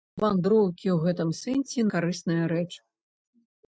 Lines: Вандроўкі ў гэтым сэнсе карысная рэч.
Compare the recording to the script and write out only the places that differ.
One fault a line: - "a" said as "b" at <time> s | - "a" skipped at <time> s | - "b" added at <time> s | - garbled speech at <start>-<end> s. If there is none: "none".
none